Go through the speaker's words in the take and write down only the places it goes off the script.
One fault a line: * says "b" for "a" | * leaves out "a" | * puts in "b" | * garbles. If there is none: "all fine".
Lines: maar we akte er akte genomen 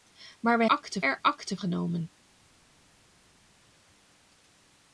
all fine